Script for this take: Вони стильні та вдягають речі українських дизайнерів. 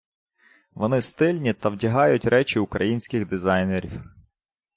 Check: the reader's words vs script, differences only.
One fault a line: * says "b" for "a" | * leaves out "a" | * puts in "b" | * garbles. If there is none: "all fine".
all fine